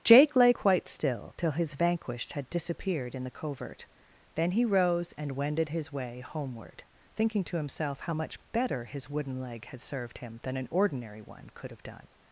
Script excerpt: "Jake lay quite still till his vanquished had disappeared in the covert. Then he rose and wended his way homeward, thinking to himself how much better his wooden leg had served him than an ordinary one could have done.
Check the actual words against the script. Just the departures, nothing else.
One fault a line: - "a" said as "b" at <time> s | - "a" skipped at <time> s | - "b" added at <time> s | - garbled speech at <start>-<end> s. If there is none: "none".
none